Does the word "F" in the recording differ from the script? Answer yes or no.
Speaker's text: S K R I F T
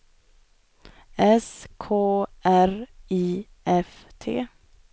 no